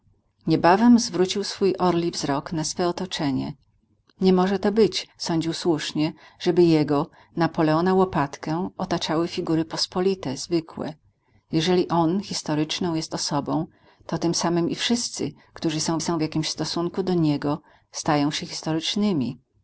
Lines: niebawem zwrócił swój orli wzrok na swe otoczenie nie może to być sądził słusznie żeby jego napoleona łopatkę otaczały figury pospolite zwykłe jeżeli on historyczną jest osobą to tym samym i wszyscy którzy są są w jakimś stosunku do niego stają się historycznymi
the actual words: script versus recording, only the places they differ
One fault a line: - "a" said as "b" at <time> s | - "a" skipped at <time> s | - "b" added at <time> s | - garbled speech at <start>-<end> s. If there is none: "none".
none